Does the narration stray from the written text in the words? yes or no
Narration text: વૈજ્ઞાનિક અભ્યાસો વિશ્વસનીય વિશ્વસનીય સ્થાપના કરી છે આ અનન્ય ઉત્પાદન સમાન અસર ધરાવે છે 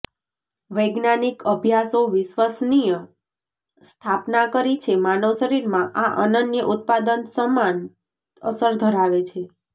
yes